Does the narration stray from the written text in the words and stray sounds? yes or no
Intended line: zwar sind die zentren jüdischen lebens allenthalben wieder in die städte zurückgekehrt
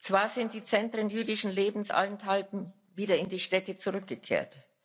no